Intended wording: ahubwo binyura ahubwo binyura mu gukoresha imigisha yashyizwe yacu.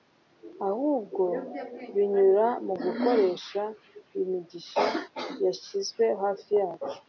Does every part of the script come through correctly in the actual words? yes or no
no